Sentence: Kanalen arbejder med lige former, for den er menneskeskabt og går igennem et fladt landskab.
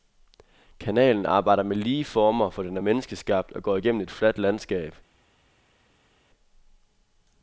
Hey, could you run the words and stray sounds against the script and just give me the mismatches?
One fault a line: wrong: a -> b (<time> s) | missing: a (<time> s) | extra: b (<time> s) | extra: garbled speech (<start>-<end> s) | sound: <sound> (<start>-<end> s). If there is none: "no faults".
no faults